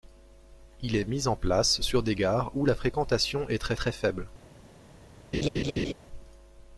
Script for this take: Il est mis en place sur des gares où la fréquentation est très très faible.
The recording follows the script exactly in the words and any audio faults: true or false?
false